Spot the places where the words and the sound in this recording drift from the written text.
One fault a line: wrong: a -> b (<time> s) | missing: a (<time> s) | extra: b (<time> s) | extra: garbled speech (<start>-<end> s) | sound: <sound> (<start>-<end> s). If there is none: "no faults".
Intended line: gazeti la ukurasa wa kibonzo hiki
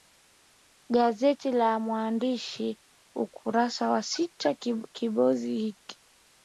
extra: mwananchi (1.8 s)
extra: sita (4.0 s)